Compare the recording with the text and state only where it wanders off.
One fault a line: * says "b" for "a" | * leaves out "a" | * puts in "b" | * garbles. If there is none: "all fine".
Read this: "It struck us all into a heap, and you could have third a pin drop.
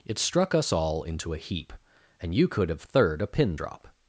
all fine